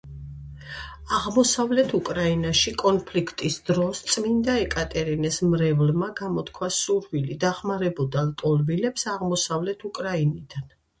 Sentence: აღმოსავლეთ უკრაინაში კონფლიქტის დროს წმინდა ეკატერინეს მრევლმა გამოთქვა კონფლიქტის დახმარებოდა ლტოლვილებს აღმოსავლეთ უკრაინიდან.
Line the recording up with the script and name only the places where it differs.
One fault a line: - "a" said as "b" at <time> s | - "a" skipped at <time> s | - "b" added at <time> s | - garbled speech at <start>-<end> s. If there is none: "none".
- "კონფლიქტის" said as "სურვილი" at 6.8 s